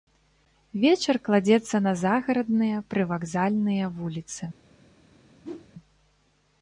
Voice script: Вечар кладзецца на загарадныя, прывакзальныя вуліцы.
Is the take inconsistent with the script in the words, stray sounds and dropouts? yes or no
yes